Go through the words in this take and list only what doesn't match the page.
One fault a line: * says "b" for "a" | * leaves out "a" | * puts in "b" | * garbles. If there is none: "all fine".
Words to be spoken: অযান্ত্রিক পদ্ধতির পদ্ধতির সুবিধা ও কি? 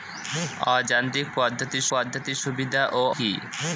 all fine